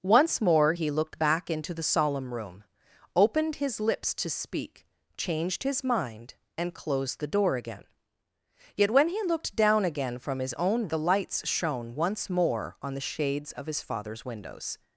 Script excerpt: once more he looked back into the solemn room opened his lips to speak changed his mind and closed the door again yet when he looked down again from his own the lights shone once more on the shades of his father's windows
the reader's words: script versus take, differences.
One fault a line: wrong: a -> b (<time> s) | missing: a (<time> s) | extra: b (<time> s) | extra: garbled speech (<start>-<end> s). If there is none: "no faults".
no faults